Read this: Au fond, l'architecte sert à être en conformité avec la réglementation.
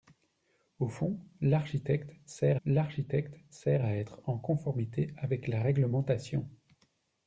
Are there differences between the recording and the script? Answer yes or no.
yes